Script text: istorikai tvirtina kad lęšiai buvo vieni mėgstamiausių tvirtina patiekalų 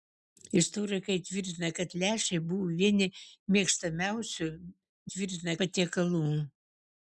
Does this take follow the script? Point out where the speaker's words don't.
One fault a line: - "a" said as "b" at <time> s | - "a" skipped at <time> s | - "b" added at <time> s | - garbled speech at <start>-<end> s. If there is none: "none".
none